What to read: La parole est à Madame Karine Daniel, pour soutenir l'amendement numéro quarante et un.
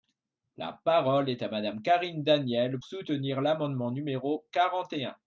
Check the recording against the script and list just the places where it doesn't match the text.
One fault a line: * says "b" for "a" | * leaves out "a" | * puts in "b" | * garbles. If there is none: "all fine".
* leaves out "pour"